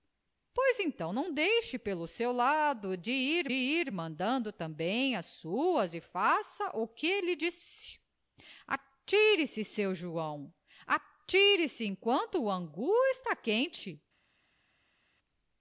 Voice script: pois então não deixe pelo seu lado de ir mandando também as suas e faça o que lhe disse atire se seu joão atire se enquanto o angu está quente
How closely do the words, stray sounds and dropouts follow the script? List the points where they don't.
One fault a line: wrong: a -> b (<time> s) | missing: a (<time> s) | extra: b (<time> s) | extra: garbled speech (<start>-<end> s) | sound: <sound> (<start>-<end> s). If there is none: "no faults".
extra: ir (3.5 s)